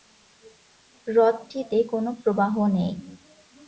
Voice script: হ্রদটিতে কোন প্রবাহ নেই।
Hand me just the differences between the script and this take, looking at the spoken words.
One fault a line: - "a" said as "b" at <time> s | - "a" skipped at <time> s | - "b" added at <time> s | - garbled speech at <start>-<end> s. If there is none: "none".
none